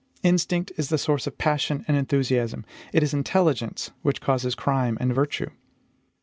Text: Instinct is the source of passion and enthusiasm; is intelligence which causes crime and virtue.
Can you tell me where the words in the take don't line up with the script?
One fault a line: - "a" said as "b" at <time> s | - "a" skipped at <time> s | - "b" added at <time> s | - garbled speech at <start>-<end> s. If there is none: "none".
- "it" added at 2.9 s